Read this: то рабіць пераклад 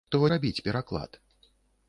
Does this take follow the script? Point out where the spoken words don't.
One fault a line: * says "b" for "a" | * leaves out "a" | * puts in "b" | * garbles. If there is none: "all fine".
all fine